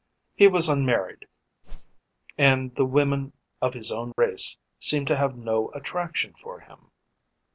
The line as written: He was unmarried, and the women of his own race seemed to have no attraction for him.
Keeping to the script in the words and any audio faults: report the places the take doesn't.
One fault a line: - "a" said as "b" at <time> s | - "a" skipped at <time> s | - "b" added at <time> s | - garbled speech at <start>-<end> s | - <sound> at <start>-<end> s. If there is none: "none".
- whoosh at 1.6-2.0 s
- dropout at 4.1-4.2 s